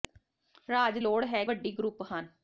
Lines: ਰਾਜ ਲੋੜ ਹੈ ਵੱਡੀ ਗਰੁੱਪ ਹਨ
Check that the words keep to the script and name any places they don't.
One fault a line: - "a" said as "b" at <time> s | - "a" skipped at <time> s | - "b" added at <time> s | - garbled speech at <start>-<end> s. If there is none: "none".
none